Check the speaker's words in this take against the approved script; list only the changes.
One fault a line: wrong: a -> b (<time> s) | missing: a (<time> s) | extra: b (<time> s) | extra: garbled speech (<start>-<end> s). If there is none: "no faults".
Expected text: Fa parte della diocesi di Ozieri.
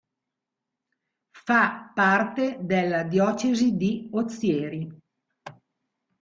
no faults